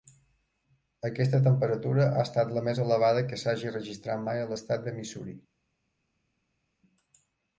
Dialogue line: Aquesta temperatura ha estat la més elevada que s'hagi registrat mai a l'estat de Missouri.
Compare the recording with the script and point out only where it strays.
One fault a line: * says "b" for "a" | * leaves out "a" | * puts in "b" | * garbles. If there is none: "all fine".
all fine